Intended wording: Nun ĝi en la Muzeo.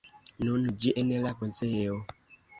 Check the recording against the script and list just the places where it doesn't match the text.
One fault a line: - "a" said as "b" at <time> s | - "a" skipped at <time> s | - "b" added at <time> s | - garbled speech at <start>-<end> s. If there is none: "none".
none